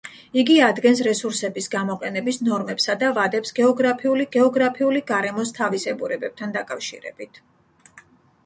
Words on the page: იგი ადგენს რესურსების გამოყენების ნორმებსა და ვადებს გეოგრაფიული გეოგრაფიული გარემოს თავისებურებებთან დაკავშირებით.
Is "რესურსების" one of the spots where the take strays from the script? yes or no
no